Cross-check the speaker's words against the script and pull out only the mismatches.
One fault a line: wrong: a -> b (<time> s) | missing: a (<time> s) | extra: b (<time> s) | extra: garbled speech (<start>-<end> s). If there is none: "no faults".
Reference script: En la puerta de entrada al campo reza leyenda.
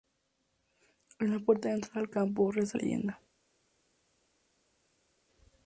no faults